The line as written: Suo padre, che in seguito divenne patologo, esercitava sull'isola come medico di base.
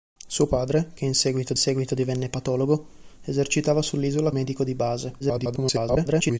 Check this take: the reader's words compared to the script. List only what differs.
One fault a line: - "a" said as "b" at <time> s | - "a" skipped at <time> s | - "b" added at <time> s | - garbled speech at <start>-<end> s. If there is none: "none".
- "seguito" added at 1.6 s
- "come" skipped at 4.3 s
- garbled speech at 5.2-6.4 s